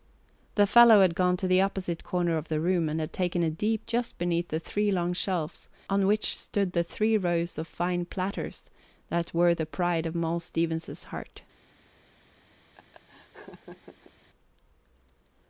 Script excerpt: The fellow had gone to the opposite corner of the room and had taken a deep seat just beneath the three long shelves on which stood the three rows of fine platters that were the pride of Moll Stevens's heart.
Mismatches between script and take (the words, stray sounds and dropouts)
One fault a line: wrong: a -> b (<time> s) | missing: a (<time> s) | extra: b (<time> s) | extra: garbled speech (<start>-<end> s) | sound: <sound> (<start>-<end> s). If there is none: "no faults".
missing: seat (3.9 s)
sound: laugh (12.7-14.1 s)